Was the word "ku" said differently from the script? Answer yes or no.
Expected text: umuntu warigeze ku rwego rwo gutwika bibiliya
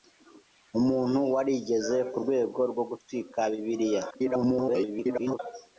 no